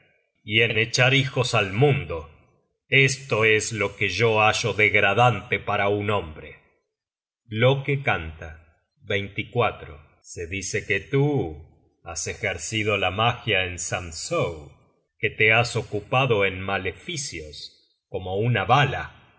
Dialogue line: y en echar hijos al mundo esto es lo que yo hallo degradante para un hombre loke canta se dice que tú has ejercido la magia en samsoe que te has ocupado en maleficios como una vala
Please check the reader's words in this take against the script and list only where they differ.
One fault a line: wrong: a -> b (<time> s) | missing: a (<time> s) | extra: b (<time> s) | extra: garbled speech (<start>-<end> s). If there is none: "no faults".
extra: en (0.7 s)